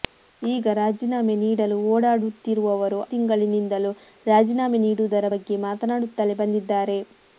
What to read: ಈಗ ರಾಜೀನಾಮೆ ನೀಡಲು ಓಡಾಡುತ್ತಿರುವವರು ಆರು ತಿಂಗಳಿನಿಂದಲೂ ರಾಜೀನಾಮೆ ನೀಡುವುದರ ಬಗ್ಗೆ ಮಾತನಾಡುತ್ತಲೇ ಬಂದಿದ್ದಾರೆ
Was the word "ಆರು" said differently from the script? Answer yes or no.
yes